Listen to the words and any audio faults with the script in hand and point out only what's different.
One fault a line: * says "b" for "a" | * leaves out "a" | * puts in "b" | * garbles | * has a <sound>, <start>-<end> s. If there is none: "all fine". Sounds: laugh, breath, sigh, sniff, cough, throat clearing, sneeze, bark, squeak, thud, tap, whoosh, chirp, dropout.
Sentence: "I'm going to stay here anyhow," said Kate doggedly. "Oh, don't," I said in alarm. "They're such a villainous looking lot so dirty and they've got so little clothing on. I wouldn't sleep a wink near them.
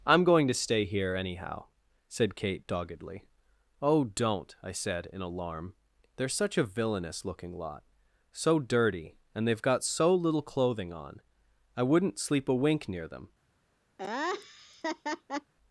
* has a laugh, 14.0-15.5 s